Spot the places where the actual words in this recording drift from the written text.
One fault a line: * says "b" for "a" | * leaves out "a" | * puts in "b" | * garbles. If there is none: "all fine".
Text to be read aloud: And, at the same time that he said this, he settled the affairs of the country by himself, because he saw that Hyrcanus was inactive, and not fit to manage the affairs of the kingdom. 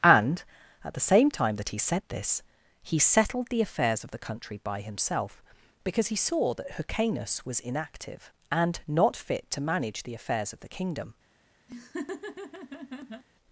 all fine